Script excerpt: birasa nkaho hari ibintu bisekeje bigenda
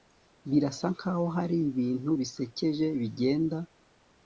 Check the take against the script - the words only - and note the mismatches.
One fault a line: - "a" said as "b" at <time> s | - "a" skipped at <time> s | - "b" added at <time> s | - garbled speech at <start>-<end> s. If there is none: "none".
none